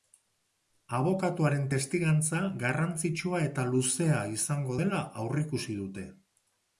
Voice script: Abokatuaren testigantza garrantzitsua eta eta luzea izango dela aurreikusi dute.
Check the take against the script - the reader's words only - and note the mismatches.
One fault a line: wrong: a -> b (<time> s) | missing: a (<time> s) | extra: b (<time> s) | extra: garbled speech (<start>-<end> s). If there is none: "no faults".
missing: eta (3.6 s)